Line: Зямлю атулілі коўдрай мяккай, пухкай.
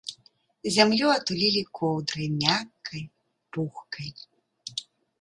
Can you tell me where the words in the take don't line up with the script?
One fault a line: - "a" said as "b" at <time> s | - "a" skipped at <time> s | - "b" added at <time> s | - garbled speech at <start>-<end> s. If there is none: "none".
none